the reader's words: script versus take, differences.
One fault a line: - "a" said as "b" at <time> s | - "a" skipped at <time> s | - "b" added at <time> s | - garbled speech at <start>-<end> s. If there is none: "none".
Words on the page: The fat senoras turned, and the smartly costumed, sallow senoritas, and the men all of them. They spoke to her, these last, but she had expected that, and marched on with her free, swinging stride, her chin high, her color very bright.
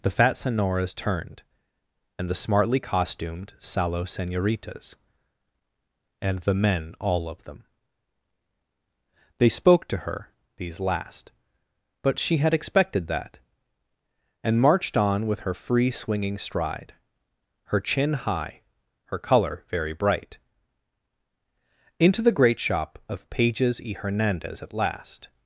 - "Into the great shop of Pages y Hernandez at last" added at 22.0 s